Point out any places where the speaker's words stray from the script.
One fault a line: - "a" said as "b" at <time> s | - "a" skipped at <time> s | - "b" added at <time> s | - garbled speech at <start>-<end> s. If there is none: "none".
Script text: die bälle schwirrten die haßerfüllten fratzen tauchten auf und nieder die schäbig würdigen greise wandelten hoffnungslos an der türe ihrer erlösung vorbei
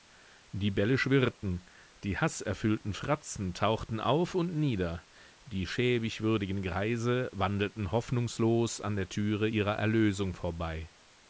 none